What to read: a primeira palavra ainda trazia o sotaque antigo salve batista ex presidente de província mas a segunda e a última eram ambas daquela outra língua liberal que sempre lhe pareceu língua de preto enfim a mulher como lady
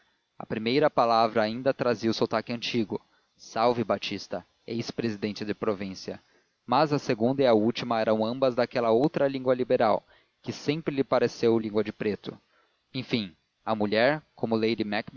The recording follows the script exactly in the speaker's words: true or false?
true